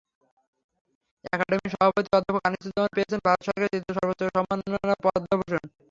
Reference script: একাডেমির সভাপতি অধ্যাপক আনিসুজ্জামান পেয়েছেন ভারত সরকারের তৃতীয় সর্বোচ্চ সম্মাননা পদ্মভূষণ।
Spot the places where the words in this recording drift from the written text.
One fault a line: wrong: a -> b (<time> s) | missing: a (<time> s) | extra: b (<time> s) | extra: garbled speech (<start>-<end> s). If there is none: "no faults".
no faults